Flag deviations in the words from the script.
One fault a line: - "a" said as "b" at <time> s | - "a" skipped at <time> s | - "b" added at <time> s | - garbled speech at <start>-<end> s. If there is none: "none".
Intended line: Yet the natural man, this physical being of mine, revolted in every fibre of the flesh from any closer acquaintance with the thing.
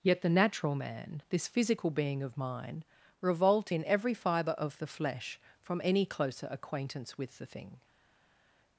- "revolted" said as "revolt" at 3.2 s